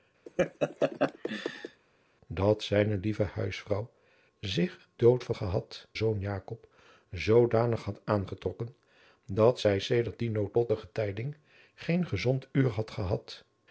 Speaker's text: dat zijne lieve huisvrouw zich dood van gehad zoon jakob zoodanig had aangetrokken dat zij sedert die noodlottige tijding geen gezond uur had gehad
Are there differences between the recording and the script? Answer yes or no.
no